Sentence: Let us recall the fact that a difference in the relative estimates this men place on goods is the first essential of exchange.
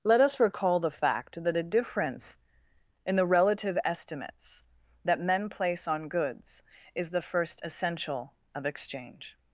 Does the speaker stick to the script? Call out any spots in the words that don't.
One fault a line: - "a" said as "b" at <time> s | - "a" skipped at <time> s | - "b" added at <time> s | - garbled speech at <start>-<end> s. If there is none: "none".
- "this" said as "that" at 5.0 s